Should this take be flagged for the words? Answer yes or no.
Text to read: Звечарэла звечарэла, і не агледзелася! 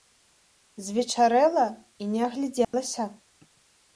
yes